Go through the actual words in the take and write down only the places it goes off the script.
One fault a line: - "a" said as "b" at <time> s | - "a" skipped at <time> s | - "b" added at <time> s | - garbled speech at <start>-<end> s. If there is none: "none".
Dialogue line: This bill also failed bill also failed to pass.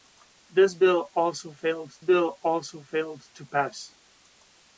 none